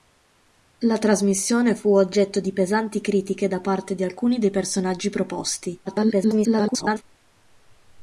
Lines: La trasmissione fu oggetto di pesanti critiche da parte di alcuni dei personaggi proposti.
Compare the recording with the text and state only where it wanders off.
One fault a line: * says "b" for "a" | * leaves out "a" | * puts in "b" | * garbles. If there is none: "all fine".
* garbles